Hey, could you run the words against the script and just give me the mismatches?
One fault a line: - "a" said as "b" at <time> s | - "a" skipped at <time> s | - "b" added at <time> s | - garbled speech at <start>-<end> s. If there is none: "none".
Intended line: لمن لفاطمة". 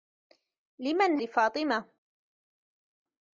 none